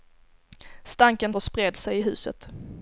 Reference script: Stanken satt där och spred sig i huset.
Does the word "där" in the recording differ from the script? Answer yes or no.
yes